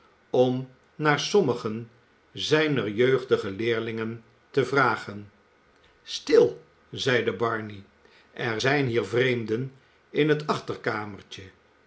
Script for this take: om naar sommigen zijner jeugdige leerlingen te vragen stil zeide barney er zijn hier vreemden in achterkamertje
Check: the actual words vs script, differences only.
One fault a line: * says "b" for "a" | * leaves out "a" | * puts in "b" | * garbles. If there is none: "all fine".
* puts in "het"